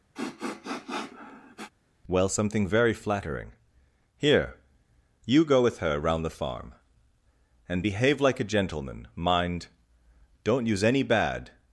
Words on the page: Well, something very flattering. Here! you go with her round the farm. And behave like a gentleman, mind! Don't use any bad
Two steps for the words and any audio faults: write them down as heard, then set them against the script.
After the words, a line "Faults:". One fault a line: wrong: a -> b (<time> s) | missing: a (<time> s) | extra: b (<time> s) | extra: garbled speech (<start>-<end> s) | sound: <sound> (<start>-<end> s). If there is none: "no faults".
Well, something very flattering. Here! you go with her round the farm. And behave like a gentleman, mind! Don't use any bad
Faults:
sound: sniff (0.1-1.7 s)